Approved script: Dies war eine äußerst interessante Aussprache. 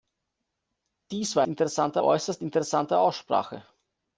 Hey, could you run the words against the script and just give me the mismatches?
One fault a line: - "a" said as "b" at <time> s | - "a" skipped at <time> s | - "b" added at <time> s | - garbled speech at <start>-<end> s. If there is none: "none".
- "eine" said as "interessante" at 1.5 s